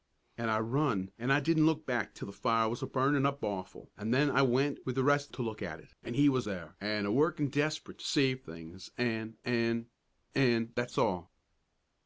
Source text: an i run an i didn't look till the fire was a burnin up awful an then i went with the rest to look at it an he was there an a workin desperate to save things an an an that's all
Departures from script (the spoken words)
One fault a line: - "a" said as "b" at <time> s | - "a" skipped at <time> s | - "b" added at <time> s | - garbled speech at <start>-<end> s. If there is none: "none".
- "back" added at 1.9 s